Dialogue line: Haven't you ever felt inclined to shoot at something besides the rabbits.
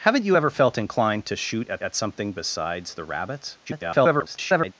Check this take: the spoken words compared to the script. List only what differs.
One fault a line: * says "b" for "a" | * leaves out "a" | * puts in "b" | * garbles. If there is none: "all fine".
* puts in "at"
* garbles